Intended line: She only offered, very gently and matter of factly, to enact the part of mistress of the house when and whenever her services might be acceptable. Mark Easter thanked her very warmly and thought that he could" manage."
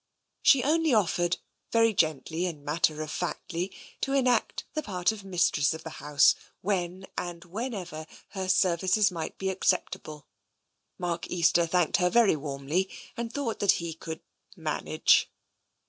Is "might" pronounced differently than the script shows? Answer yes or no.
no